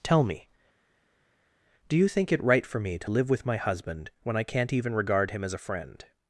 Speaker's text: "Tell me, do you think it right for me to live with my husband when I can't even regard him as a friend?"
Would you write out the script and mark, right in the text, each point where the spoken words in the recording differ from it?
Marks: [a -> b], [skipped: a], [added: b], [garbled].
"Tell me, do you think it right for me to live with my husband when I can't even regard him as a friend?"